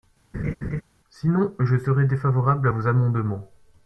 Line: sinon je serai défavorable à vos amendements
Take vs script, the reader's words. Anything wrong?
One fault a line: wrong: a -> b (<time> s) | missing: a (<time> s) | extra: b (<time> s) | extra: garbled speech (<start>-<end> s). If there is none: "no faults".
no faults